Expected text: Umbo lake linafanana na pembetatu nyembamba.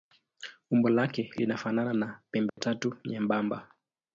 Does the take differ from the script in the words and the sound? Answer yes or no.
yes